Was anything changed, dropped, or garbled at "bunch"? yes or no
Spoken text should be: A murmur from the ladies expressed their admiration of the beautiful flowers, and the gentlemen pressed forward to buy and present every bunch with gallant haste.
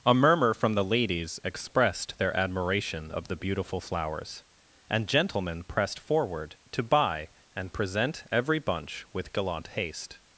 no